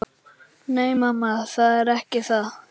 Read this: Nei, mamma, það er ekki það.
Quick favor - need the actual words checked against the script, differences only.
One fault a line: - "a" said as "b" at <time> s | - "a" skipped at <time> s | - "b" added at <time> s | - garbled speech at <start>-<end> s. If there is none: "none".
none